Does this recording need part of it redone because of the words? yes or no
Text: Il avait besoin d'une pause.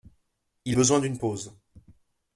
yes